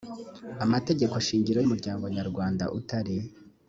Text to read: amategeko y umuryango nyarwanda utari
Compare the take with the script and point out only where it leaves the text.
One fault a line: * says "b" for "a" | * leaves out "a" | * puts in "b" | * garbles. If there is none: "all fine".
* puts in "shingiro"